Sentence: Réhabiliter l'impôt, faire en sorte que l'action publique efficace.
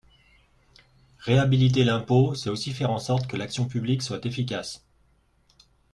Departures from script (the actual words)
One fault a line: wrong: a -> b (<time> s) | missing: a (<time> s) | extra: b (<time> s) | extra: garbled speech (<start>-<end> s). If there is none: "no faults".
extra: c'est aussi (2.3 s)
extra: soit (4.0 s)